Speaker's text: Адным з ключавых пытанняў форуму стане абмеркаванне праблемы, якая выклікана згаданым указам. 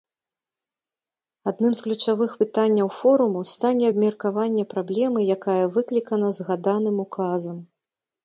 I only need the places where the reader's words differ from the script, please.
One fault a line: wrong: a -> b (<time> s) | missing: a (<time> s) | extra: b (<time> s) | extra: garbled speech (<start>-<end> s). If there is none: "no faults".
no faults